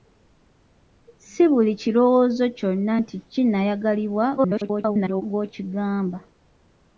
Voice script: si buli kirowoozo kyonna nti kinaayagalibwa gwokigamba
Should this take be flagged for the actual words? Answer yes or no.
yes